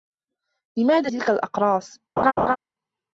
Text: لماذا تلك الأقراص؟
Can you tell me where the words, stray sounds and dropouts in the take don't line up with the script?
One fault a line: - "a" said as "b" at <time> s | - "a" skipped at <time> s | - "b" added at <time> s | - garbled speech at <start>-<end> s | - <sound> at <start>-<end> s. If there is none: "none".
- laugh at 2.2-2.6 s